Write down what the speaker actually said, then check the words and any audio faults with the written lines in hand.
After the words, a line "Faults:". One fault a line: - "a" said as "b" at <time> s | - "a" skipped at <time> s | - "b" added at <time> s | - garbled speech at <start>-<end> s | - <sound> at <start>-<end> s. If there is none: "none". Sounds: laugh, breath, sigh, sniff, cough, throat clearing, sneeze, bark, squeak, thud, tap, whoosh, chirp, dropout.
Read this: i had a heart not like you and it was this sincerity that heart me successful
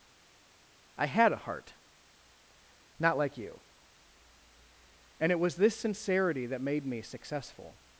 i had a heart not like you and it was this sincerity that made me successful
Faults:
- "heart" said as "made" at 6.6 s